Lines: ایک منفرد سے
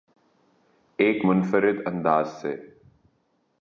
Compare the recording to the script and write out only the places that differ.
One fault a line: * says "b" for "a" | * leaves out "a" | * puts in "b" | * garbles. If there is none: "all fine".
* puts in "انداز"